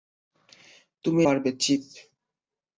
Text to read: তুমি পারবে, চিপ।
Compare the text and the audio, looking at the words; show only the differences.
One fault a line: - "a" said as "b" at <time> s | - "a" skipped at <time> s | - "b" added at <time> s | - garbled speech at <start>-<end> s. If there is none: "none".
none